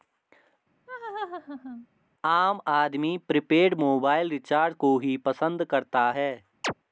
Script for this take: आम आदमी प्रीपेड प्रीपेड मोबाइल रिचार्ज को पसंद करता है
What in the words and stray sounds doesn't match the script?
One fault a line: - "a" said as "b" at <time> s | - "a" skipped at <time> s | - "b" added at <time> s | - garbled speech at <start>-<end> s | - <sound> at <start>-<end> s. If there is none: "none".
- laugh at 0.9-1.9 s
- "प्रीपेड" skipped at 3.7 s
- "ही" added at 5.0 s
- chirp at 6.6-6.7 s